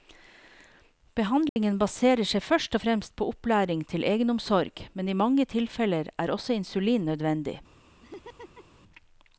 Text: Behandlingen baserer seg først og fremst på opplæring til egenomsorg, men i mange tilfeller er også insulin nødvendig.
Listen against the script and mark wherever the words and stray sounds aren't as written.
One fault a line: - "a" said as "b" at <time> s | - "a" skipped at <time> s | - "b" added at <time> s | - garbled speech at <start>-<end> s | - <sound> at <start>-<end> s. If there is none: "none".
- dropout at 1.5-1.6 s
- laugh at 8.0-8.8 s